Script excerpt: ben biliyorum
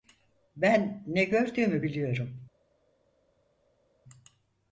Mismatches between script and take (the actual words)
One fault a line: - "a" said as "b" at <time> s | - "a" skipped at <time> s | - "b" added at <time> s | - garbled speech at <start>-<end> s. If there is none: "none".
- "ne gördüğümü" added at 1.1 s